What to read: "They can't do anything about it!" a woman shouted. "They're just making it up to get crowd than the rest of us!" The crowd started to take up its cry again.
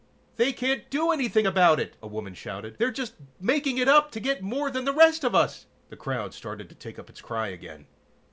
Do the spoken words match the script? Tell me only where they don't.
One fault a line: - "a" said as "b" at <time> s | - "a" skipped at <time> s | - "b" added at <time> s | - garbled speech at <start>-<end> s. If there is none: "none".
- "crowd" said as "more" at 4.4 s